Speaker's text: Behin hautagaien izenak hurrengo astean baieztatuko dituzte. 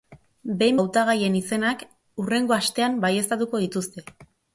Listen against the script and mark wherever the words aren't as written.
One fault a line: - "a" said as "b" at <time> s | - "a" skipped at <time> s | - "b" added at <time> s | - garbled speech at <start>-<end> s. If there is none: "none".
none